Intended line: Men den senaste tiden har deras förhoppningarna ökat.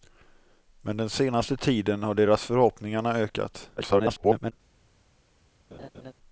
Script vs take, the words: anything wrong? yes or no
yes